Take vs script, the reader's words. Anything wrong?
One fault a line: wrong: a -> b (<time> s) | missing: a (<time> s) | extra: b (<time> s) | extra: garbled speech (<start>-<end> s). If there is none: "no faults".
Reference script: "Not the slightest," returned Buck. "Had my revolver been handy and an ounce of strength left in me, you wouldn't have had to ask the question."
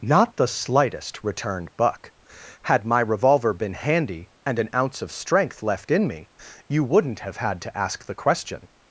no faults